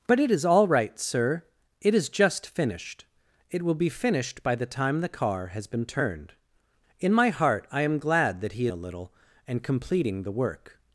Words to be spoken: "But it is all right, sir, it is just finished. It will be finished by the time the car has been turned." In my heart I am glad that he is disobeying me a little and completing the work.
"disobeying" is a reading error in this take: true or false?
true